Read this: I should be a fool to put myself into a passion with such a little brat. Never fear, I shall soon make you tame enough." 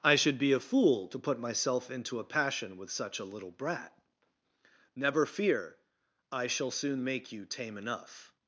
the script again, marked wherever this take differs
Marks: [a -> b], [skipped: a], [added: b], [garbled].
I should be a fool to put myself into a passion with such a little brat. Never fear, I shall soon make you tame enough."